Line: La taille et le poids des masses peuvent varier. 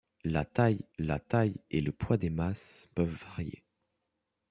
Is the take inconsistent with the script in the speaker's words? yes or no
yes